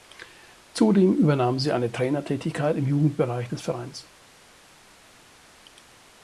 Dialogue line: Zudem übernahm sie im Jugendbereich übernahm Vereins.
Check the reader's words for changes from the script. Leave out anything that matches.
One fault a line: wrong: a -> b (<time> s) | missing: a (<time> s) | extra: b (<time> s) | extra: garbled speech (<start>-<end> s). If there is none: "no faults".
extra: eine Trainertätigkeit (1.7 s)
wrong: übernahm -> des (3.5 s)